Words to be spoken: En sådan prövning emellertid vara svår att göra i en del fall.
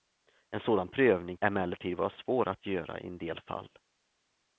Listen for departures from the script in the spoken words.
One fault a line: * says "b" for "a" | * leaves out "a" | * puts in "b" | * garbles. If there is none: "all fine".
all fine